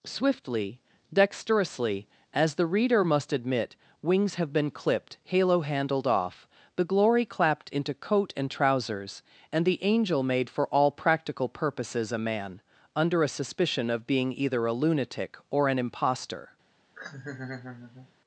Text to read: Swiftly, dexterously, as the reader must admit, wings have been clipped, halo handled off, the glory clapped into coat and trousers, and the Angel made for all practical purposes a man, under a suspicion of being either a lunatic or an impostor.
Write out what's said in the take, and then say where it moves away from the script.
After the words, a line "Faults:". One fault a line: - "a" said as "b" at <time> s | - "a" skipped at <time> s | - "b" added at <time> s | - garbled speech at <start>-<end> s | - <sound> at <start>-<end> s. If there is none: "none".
Swiftly, dexterously, as the reader must admit, wings have been clipped, halo handled off, the glory clapped into coat and trousers, and the Angel made for all practical purposes a man, under a suspicion of being either a lunatic or an impostor.
Faults:
- laugh at 17.0-18.1 s